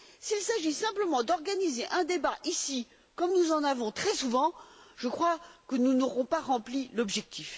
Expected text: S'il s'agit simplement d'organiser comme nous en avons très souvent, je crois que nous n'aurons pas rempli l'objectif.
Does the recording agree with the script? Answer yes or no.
no